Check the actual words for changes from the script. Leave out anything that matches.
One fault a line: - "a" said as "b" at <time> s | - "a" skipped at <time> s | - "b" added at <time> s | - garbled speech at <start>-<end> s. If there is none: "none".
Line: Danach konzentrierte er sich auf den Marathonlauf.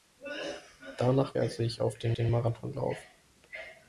- "konzentrierte" skipped at 1.4 s
- "den" added at 2.1 s